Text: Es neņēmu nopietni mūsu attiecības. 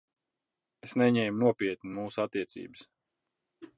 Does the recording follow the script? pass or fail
pass